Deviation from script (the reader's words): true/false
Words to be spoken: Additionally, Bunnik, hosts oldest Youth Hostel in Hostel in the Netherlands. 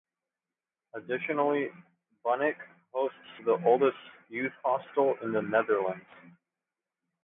true